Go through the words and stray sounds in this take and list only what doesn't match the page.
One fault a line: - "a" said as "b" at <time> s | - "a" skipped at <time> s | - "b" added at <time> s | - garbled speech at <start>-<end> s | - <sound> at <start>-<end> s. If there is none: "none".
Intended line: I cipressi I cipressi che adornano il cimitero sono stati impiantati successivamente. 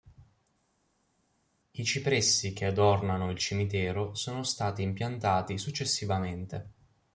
- "I cipressi" skipped at 2.5 s